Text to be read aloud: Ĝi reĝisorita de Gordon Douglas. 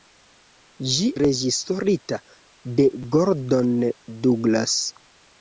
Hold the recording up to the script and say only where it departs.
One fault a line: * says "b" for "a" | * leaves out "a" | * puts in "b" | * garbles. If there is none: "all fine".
all fine